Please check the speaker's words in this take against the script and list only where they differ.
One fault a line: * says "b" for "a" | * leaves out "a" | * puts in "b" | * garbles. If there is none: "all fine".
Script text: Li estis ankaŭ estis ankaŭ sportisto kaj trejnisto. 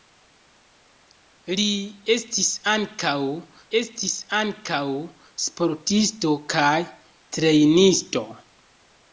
all fine